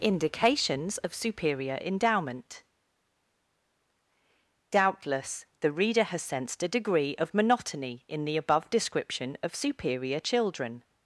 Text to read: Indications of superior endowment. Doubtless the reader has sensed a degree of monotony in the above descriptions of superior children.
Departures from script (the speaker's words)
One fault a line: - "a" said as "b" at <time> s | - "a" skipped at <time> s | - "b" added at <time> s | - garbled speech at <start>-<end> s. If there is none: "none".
- "descriptions" said as "description" at 8.7 s